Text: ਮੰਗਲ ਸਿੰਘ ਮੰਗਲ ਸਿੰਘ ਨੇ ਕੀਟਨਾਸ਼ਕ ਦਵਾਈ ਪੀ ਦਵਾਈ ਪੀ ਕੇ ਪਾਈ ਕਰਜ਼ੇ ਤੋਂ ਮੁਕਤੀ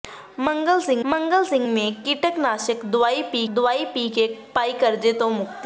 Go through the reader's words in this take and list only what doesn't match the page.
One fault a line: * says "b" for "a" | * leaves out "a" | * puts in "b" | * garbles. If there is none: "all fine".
all fine